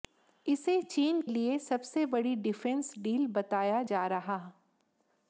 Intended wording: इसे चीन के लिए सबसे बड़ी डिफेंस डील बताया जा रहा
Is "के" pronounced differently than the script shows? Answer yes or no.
yes